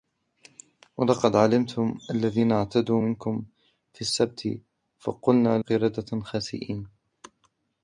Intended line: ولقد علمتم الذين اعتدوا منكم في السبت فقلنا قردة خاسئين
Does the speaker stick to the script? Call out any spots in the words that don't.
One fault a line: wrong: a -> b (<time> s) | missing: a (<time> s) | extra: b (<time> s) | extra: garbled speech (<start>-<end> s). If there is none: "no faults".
no faults